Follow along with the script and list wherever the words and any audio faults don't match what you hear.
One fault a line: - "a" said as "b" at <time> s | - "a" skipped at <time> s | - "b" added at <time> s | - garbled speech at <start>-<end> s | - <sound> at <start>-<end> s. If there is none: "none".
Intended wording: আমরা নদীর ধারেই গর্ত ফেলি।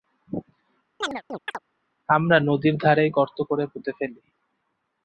- chirp at 1.0-1.6 s
- "করে পুঁতে" added at 3.4 s